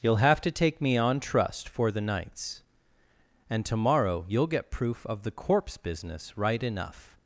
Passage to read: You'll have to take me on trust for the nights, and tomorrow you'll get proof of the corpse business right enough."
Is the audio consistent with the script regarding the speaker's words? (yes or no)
yes